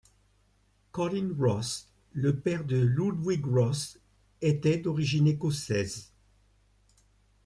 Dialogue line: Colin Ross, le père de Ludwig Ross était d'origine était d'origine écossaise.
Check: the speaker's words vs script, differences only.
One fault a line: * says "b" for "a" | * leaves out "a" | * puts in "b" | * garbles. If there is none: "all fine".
* leaves out "était d'origine"